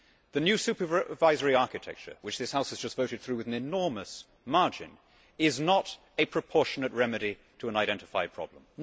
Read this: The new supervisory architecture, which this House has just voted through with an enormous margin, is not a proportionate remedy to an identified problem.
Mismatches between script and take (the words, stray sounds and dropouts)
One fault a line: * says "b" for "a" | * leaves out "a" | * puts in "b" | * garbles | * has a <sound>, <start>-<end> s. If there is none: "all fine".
all fine